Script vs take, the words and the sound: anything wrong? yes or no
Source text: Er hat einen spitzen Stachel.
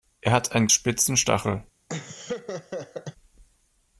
yes